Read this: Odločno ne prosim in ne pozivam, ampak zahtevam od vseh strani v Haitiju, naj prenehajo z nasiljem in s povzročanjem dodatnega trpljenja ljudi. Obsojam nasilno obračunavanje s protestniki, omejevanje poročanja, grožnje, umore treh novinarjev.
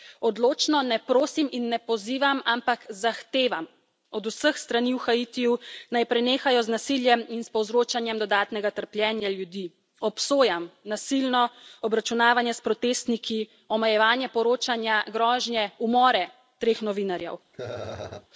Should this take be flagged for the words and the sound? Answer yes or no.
yes